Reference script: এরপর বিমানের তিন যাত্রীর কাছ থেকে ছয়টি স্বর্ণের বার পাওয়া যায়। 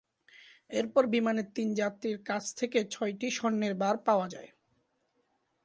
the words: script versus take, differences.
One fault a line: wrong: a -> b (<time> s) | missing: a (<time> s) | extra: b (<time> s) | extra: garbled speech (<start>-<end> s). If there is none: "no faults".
no faults